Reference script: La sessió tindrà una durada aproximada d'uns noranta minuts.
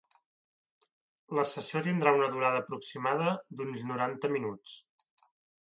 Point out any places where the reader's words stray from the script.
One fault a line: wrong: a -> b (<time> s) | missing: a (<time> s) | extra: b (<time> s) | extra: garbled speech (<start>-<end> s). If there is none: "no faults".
no faults